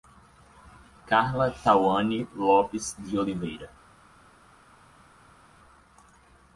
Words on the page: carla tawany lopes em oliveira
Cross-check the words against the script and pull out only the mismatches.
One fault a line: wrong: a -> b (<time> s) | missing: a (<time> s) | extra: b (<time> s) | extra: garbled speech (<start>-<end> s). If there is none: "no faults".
wrong: em -> de (3.0 s)